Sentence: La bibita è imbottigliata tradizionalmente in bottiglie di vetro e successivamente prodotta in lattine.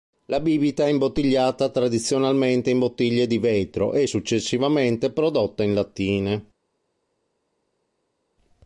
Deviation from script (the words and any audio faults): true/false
false